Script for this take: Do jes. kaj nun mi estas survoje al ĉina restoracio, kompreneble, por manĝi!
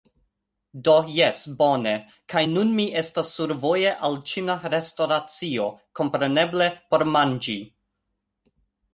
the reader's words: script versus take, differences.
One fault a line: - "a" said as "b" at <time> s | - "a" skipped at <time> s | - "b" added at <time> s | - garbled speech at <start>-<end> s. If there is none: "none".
- "bone" added at 1.6 s